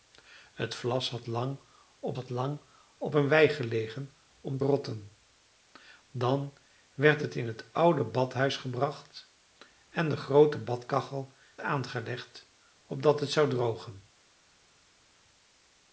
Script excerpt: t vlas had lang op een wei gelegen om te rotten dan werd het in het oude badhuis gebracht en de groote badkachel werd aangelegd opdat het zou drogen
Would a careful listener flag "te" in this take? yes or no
yes